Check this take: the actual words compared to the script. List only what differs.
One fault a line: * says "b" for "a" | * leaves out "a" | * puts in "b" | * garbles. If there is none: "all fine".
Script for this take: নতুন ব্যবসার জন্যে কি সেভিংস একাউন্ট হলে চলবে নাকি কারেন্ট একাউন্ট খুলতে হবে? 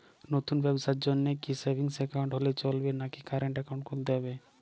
all fine